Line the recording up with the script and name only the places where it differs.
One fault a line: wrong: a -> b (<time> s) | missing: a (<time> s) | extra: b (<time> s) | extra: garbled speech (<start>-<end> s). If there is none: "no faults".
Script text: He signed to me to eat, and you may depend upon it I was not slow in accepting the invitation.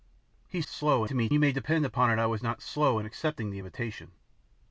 wrong: signed -> slow (0.7 s)
missing: to eat and (1.3 s)